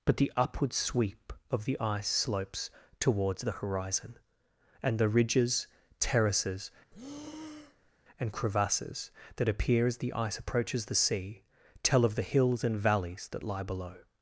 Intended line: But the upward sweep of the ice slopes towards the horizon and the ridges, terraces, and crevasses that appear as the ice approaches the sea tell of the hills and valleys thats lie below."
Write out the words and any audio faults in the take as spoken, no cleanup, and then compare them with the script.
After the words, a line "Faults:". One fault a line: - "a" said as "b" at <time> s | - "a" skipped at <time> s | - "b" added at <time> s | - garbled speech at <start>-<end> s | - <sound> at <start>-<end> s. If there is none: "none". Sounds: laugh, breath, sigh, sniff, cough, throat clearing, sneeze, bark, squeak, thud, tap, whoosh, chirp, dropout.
But the upward sweep of the ice slopes towards the horizon and the ridges, terraces, and crevasses that appear as the ice approaches the sea tell of the hills and valleys that lie below."
Faults:
- breath at 6.9-7.9 s
- "thats" said as "that" at 13.3 s